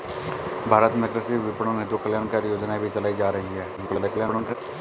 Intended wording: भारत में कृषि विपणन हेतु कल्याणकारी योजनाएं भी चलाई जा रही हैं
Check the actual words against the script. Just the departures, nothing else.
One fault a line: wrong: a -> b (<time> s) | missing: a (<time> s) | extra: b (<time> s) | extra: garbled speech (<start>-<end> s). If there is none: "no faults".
extra: garbled speech (3.8-4.6 s)